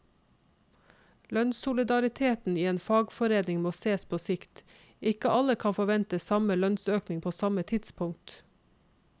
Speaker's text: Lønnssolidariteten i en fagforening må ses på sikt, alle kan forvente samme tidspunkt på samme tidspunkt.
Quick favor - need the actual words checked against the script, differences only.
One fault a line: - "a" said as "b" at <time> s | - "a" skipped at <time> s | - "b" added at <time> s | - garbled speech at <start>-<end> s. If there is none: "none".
- "ikke" added at 5.0 s
- "tidspunkt" said as "lønnsøkning" at 6.6 s